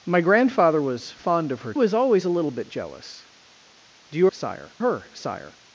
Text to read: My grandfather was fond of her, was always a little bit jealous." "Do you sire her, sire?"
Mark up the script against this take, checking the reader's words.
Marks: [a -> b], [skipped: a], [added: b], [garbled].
My grandfather was fond of her, was always a little bit jealous." "Do you sire her, sire?"